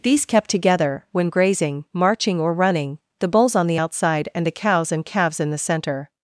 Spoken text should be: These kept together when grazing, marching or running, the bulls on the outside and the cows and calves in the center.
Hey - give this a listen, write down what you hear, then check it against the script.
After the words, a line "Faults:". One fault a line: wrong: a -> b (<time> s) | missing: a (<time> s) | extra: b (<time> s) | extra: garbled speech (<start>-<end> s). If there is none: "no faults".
These kept together when grazing, marching or running, the bulls on the outside and the cows and calves in the center.
Faults:
no faults